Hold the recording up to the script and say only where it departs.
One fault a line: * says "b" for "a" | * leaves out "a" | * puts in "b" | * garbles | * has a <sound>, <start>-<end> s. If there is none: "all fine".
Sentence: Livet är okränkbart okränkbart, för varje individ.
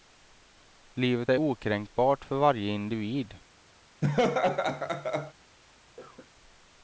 * leaves out "okränkbart"
* has a laugh, 4.0-5.3 s
* has a cough, 6.0-6.3 s